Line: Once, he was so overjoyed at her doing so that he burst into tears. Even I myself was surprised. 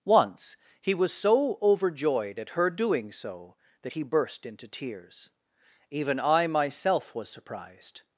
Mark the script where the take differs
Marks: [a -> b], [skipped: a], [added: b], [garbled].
Once, he was so overjoyed at her doing so that he burst into tears. Even I myself was surprised.